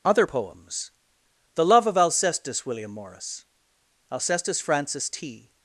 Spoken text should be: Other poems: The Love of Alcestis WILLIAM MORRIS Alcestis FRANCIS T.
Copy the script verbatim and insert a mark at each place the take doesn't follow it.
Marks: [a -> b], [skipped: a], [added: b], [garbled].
Other poems: The Love of Alcestis WILLIAM MORRIS Alcestis FRANCIS T.